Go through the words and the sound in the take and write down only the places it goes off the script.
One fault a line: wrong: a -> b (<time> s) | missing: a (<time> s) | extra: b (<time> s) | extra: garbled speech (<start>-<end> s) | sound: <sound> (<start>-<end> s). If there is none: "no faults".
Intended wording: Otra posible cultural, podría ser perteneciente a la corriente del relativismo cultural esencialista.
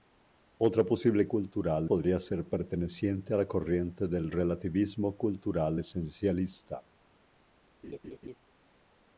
sound: laugh (7.8-8.4 s)